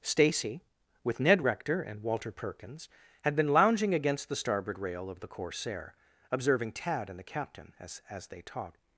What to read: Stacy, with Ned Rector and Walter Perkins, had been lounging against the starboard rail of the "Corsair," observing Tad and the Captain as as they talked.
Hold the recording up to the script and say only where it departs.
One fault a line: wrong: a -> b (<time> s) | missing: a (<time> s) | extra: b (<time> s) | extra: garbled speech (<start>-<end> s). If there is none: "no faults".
no faults